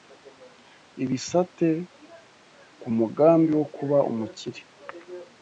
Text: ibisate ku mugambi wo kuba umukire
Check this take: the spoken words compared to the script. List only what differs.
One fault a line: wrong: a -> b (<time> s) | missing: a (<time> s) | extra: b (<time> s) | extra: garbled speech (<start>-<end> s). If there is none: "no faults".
no faults